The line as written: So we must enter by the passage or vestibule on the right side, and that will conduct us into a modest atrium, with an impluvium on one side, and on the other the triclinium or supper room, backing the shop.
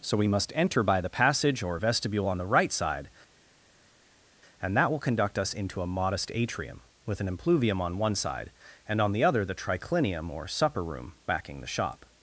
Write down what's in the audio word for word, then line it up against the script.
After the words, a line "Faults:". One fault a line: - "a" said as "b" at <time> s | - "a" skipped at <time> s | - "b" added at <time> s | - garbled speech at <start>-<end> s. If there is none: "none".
So we must enter by the passage or vestibule on the right side, and that will conduct us into a modest atrium, with an impluvium on one side, and on the other the triclinium or supper room, backing the shop.
Faults:
none